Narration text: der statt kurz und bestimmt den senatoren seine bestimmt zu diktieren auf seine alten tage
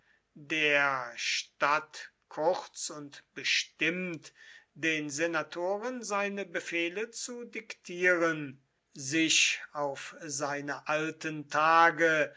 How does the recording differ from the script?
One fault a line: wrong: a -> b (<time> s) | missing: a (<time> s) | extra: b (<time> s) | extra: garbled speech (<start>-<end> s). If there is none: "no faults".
wrong: bestimmt -> befehle (6.5 s)
extra: sich (8.9 s)